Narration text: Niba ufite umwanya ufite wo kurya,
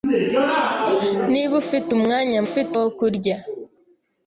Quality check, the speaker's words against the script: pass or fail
pass